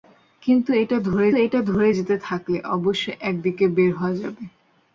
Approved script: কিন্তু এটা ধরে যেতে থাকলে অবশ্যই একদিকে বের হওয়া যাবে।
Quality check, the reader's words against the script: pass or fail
fail